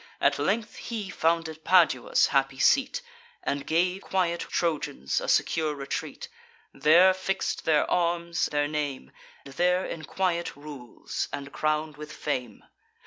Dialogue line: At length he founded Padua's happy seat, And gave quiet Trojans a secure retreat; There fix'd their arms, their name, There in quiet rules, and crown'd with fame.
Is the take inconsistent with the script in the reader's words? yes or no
no